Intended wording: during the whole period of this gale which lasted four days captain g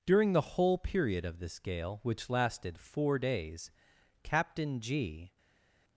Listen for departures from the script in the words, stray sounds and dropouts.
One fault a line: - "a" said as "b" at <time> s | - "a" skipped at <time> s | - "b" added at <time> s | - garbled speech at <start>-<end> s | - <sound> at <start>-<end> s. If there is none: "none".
none